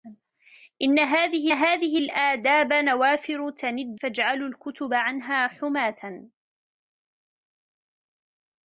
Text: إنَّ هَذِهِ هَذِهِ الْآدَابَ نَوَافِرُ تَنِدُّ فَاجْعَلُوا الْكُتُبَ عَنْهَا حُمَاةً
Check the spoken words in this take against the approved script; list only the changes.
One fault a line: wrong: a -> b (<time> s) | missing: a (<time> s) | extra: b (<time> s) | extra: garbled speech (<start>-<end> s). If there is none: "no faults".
no faults